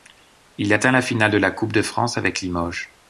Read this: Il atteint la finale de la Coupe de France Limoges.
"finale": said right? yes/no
yes